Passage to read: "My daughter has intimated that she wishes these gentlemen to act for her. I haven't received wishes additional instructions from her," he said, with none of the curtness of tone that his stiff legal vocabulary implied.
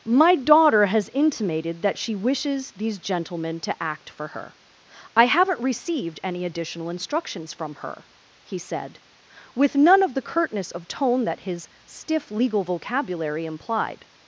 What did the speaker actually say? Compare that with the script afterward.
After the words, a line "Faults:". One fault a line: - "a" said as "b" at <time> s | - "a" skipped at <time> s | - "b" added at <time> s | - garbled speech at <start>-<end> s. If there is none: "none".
"My daughter has intimated that she wishes these gentlemen to act for her. I haven't received any additional instructions from her," he said, with none of the curtness of tone that his stiff legal vocabulary implied.
Faults:
- "wishes" said as "any" at 6.2 s